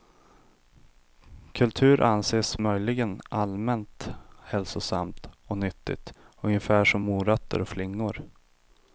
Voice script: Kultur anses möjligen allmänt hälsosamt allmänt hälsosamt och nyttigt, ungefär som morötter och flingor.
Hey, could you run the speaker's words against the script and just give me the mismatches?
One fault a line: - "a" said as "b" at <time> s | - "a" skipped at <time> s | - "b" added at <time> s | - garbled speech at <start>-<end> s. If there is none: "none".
- "allmänt hälsosamt" skipped at 5.3 s